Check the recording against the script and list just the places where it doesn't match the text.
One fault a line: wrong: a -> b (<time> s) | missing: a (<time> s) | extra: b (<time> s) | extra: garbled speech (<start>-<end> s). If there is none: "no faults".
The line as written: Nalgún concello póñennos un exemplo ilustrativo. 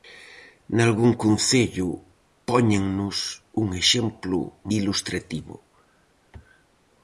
no faults